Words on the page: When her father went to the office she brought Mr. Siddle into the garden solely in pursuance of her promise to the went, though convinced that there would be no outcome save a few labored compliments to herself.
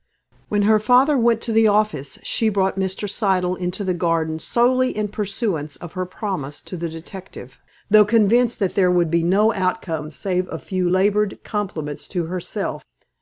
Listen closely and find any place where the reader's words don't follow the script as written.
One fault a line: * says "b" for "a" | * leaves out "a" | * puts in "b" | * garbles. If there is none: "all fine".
* says "detective" for "went"